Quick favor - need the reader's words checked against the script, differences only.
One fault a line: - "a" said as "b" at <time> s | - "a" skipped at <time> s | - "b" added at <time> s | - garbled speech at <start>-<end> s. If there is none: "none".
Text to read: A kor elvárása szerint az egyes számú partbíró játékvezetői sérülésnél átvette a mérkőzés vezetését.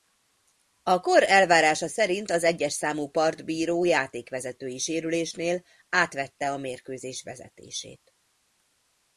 none